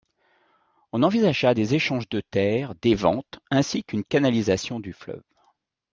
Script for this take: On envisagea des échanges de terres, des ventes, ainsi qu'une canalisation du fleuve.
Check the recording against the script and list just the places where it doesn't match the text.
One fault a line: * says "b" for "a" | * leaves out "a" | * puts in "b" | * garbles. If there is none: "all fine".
all fine